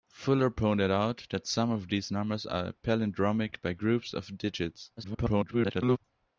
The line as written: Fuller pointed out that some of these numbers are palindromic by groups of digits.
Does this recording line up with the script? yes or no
no